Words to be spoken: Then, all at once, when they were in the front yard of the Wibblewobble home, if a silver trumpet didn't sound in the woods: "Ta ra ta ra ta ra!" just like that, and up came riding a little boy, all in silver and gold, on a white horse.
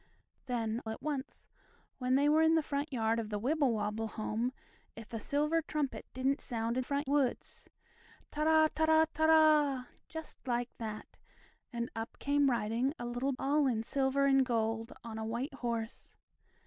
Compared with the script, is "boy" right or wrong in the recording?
wrong